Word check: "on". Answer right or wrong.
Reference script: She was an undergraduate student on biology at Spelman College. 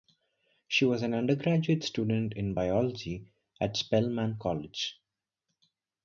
wrong